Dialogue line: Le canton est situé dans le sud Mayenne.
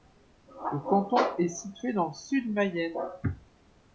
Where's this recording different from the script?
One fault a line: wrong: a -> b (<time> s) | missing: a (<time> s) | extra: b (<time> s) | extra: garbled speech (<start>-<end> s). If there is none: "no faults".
no faults